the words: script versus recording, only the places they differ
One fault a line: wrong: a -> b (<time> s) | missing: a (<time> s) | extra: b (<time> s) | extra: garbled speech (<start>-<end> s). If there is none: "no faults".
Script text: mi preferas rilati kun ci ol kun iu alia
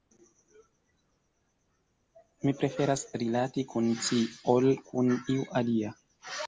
no faults